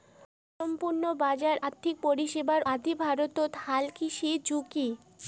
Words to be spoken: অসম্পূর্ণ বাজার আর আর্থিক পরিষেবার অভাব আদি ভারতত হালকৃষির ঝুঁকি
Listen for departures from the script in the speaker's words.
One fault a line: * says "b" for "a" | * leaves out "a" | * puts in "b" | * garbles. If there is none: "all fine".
* leaves out "আর"
* leaves out "অভাব"